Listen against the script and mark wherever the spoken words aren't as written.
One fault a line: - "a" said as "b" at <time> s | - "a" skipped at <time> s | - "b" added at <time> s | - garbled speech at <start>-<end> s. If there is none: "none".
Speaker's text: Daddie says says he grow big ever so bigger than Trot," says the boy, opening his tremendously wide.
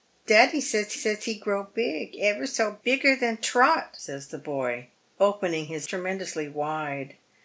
none